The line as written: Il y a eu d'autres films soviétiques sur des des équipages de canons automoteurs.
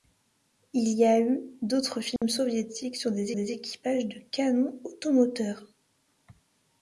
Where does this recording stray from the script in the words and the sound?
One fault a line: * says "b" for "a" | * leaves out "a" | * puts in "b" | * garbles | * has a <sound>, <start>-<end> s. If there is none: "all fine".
* has a dropout, 2.2-2.2 s